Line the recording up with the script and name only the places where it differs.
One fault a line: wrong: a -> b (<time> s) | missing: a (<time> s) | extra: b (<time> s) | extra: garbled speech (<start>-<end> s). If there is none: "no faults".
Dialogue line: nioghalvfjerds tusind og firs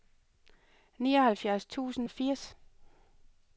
no faults